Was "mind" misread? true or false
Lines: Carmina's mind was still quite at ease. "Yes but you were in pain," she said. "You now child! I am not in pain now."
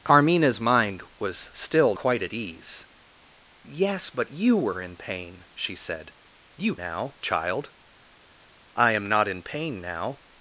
false